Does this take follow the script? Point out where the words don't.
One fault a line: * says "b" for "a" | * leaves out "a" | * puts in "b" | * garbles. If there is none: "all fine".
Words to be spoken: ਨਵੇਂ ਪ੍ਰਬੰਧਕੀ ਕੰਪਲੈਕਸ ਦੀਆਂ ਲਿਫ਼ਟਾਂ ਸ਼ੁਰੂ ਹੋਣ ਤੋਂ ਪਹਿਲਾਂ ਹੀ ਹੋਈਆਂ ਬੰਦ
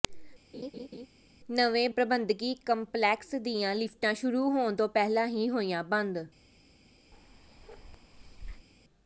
all fine